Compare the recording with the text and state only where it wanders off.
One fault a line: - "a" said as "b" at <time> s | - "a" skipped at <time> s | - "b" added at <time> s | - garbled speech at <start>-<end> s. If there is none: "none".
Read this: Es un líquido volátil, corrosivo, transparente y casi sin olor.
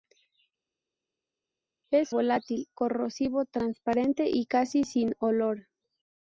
- "un líquido" skipped at 2.2 s